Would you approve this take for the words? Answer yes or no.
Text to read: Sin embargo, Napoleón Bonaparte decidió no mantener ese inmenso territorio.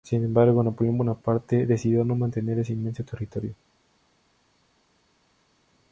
yes